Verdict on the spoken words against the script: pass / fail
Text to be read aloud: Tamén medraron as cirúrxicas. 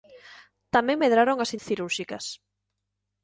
pass